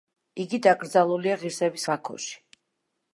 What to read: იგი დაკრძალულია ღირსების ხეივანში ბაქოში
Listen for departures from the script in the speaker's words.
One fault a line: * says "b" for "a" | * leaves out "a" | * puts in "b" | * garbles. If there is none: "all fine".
* leaves out "ხეივანში"